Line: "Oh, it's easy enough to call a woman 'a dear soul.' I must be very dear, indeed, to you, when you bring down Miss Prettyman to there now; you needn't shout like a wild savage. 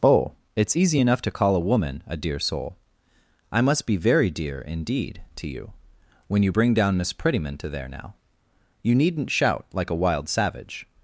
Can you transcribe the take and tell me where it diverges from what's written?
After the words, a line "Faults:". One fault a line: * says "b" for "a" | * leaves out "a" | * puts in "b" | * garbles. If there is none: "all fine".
"Oh, it's easy enough to call a woman 'a dear soul.' I must be very dear, indeed, to you, when you bring down Miss Prettyman to there now; you needn't shout like a wild savage.
Faults:
all fine